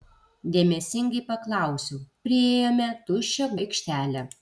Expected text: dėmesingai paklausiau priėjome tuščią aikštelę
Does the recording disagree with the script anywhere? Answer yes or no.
no